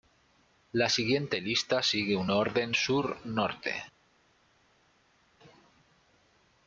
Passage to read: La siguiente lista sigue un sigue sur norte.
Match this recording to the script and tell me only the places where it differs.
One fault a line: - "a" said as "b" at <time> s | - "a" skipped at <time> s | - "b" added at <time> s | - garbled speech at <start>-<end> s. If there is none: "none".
- "sigue" said as "orden" at 2.3 s